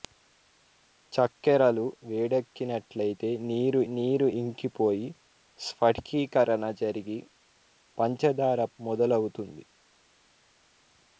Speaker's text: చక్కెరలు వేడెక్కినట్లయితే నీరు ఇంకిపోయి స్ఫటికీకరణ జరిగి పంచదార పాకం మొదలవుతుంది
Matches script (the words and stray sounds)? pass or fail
fail